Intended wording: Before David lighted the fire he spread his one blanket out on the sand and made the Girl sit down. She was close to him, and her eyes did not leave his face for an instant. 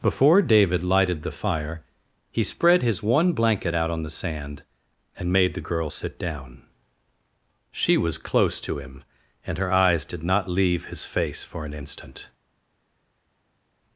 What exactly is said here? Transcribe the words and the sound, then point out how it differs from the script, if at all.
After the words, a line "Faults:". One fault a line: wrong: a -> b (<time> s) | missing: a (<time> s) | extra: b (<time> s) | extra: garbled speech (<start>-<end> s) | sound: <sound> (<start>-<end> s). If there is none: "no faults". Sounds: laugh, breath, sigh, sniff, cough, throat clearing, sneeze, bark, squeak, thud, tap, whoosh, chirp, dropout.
Before David lighted the fire he spread his one blanket out on the sand and made the Girl sit down. She was close to him, and her eyes did not leave his face for an instant.
Faults:
no faults